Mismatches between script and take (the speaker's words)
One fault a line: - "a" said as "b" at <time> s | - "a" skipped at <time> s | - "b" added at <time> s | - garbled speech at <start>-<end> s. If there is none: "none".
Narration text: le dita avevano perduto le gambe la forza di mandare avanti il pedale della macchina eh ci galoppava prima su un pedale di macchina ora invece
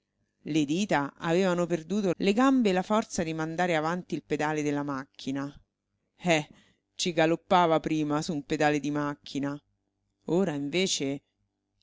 none